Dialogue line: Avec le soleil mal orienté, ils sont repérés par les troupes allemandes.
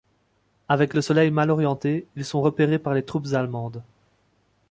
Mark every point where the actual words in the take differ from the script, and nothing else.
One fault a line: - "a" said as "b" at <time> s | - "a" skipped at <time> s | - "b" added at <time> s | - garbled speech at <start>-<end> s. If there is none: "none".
none